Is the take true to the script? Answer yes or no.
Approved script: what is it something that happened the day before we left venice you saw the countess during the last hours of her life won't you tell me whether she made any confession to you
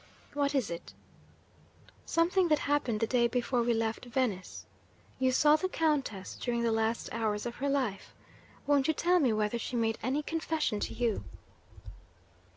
yes